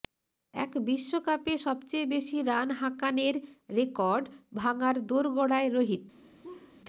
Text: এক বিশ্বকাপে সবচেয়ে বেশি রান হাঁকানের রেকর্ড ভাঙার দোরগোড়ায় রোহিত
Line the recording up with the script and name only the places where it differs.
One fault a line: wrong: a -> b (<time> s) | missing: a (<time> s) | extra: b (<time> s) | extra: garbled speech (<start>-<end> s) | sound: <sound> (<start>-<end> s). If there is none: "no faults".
sound: laugh (6.4-6.8 s)